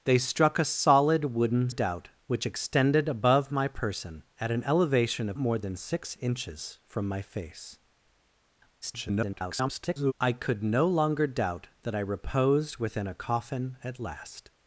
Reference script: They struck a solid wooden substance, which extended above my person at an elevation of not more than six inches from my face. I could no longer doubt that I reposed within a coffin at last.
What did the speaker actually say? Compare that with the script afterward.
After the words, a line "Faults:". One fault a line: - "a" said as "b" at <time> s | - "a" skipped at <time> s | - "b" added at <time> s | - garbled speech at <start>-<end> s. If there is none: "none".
They struck a solid wooden doubt, which extended above my person at an elevation of more than six inches from my face. [garbled] I could no longer doubt that I reposed within a coffin at last.
Faults:
- "substance" said as "doubt" at 1.7 s
- "not" skipped at 5.4 s
- garbled speech at 8.8-10.1 s